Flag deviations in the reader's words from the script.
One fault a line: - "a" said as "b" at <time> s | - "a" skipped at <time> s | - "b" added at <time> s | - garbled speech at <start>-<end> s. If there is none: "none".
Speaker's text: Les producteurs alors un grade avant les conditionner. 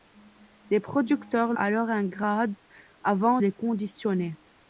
none